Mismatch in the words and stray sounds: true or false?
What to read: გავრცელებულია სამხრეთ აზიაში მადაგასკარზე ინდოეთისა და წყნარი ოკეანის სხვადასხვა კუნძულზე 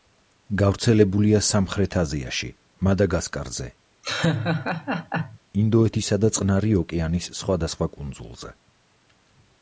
true